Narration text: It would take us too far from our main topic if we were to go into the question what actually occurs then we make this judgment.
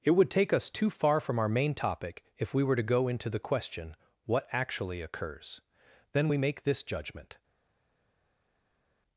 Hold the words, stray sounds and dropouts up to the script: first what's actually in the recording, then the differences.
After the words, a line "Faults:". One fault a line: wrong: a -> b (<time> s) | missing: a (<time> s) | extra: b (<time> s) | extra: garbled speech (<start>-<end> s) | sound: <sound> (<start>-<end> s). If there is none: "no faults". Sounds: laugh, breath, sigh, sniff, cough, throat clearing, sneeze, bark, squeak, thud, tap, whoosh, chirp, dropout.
It would take us too far from our main topic if we were to go into the question what actually occurs then we make this judgment.
Faults:
no faults